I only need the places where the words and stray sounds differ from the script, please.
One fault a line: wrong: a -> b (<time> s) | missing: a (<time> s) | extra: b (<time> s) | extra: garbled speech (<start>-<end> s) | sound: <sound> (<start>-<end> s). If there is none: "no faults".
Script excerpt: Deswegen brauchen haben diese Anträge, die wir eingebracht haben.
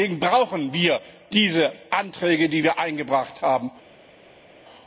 wrong: haben -> wir (0.7 s)